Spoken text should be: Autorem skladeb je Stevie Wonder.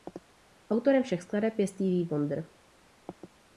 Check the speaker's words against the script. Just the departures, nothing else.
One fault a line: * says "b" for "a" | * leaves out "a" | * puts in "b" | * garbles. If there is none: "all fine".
* puts in "všech"